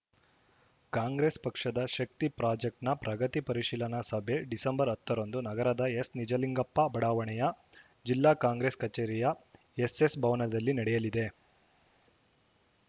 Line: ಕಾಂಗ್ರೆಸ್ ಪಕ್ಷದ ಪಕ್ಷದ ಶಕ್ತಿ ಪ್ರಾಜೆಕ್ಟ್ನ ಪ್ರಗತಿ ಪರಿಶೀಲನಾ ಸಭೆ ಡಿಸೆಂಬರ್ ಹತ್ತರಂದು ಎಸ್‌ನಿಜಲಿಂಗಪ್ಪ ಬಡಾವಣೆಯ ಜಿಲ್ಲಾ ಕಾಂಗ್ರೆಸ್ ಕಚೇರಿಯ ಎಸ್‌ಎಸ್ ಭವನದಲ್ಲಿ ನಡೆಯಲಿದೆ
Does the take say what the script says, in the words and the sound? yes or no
no